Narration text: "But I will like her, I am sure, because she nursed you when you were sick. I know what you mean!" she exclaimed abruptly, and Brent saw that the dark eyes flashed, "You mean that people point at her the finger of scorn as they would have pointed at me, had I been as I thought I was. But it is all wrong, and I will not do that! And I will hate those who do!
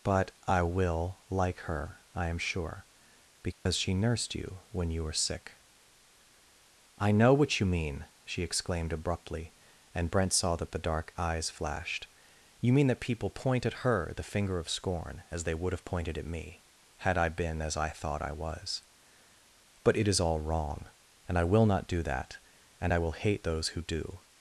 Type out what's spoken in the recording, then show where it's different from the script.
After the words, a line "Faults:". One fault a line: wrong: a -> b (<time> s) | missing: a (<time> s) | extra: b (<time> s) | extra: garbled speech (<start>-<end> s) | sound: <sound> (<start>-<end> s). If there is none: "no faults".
"But I will like her, I am sure, because she nursed you when you were sick. I know what you mean!" she exclaimed abruptly, and Brent saw that the dark eyes flashed, "You mean that people point at her the finger of scorn as they would have pointed at me, had I been as I thought I was. But it is all wrong, and I will not do that! And I will hate those who do!
Faults:
sound: dropout (3.5-3.7 s)